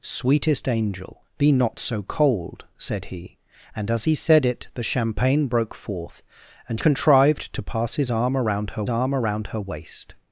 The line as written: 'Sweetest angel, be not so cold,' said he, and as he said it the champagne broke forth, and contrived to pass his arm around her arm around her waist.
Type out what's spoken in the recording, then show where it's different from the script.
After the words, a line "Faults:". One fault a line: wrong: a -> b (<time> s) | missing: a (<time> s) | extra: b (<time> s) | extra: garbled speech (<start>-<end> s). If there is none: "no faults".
'Sweetest angel, be not so cold,' said he, and as he said it the champagne broke forth, and contrived to pass his arm around her arm around her waist.
Faults:
no faults